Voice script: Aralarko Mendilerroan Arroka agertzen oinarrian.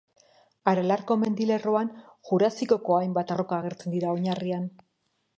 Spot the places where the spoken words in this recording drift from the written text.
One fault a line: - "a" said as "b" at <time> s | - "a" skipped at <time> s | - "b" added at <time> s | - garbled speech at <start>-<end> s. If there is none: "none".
- "Jurasikoko hainbat" added at 2.3 s
- "dira" added at 4.0 s